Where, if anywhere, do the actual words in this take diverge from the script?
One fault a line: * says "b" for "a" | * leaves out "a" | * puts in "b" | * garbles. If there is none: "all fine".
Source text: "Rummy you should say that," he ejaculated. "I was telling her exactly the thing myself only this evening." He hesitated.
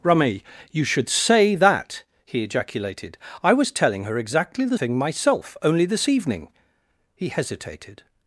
all fine